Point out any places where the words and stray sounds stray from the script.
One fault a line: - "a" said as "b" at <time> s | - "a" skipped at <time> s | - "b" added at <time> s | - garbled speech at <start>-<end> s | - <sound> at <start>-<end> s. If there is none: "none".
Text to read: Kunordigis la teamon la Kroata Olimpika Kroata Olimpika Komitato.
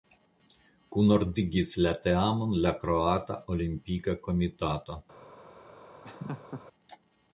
- "Kroata Olimpika" skipped at 4.2 s
- laugh at 6.0-6.7 s